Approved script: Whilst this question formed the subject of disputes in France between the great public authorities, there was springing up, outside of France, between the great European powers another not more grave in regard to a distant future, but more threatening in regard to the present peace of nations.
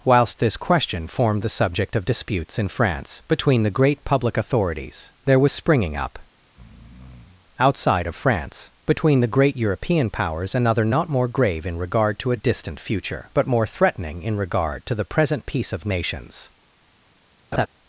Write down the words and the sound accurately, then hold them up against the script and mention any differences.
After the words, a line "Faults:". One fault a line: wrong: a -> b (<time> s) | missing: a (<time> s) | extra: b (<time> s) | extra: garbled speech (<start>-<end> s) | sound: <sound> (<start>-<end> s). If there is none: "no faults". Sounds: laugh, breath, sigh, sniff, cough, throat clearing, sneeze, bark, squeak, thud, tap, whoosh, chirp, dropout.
Whilst this question formed the subject of disputes in France between the great public authorities, there was springing up, outside of France, between the great European powers another not more grave in regard to a distant future, but more threatening in regard to the present peace of nations.
Faults:
sound: breath (6.4-7.5 s)
sound: laugh (17.5-17.7 s)